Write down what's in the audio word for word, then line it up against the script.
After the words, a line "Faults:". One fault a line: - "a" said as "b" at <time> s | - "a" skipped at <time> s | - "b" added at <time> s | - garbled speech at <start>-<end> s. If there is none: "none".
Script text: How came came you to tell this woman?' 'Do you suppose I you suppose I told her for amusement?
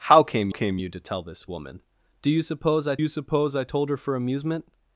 How came came you to tell this woman?' 'Do you suppose I you suppose I told her for amusement?
Faults:
none